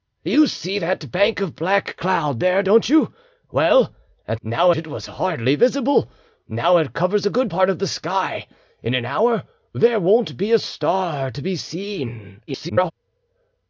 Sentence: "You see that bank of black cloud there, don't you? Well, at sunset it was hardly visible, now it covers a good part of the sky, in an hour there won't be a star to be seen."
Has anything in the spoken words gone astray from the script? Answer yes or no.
yes